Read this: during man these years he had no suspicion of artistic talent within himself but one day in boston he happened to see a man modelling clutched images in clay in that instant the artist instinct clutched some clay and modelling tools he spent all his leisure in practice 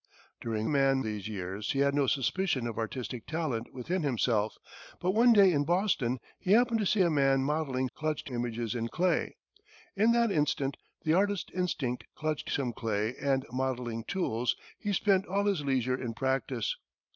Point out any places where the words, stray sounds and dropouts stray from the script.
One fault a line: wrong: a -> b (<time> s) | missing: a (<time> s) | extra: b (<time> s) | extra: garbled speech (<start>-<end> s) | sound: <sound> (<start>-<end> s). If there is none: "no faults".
no faults